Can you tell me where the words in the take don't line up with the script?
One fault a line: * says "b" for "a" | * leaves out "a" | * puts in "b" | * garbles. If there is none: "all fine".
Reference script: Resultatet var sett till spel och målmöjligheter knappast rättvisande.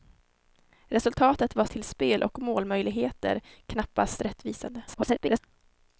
* leaves out "sett"
* garbles